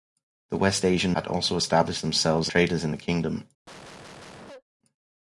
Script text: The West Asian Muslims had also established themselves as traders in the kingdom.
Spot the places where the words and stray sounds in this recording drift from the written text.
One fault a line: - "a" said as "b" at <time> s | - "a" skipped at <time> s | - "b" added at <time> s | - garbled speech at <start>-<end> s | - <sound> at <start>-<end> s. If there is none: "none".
- "Muslims" skipped at 1.1 s
- "as" skipped at 2.5 s
- cough at 3.7-4.6 s